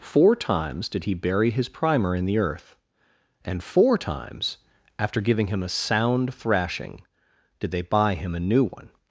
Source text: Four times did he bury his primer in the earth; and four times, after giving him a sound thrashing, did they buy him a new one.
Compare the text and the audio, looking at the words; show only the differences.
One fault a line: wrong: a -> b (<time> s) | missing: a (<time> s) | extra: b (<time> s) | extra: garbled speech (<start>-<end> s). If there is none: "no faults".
no faults